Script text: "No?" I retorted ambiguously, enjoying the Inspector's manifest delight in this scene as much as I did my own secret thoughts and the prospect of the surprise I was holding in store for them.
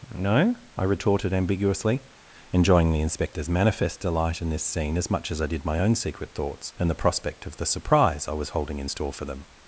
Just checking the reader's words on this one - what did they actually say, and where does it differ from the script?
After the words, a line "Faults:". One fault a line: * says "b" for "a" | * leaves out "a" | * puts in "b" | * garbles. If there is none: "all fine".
"No?" I retorted ambiguously, enjoying the Inspector's manifest delight in this scene as much as I did my own secret thoughts and the prospect of the surprise I was holding in store for them.
Faults:
all fine